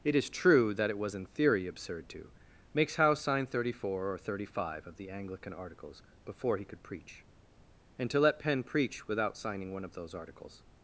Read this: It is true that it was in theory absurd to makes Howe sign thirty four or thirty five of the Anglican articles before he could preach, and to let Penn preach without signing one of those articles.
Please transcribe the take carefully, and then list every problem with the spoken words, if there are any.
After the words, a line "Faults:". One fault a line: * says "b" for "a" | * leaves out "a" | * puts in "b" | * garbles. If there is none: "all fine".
It is true that it was in theory absurd to makes Howe sign thirty four or thirty five of the Anglican articles before he could preach, and to let Penn preach without signing one of those articles.
Faults:
all fine